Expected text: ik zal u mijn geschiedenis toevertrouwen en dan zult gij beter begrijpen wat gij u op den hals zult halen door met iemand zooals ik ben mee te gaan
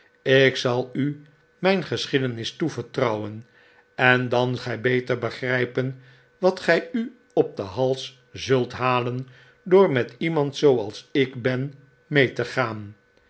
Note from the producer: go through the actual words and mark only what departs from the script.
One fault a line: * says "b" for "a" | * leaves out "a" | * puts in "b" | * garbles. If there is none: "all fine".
* leaves out "zult"